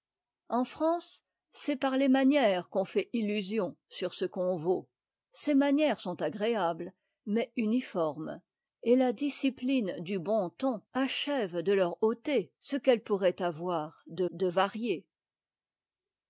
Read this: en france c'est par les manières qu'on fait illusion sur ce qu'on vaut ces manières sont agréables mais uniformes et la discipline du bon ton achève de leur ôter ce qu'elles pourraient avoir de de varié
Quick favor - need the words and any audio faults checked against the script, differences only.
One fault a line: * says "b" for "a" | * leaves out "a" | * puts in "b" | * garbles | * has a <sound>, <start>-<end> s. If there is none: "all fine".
all fine